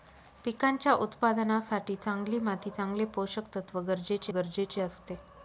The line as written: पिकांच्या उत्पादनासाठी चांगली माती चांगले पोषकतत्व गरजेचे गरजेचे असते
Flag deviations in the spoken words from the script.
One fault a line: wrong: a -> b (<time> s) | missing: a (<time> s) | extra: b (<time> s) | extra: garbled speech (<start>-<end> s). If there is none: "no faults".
no faults